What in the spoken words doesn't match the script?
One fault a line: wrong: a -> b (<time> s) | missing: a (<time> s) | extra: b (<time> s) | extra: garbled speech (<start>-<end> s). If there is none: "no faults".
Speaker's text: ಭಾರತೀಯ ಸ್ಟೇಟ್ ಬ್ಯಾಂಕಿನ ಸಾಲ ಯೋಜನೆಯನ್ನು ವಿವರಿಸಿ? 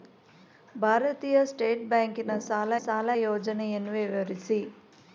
extra: ಸಾಲ (2.8 s)